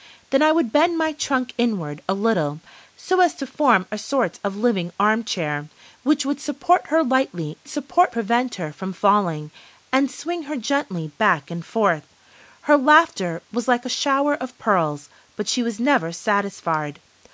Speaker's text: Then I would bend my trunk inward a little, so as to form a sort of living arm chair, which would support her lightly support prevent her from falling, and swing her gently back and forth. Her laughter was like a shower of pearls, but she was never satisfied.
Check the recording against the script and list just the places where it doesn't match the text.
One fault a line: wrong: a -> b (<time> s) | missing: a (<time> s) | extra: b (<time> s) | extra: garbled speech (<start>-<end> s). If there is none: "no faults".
no faults